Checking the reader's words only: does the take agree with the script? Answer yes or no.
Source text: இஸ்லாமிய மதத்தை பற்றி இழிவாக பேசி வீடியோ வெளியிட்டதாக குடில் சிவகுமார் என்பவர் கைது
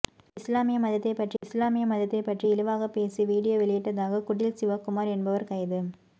no